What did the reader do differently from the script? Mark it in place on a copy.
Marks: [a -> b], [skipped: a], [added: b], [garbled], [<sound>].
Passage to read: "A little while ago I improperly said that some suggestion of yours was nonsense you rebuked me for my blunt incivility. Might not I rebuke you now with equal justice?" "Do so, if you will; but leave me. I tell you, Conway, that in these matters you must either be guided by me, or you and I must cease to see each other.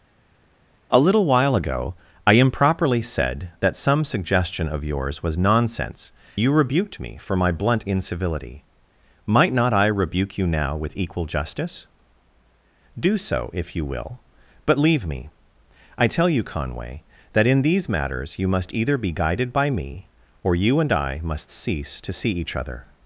"A little while ago I improperly said that some suggestion of yours was nonsense you rebuked me for my blunt incivility. Might not I rebuke you now with equal justice?" "Do so, if you will; but leave me. I tell you, Conway, that in these matters you must either be guided by me, or you and I must cease to see each other.